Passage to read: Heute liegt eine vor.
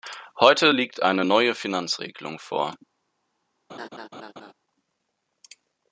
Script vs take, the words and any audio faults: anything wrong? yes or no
yes